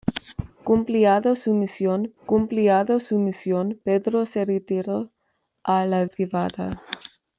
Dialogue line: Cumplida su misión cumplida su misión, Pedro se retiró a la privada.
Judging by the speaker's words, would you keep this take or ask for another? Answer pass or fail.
pass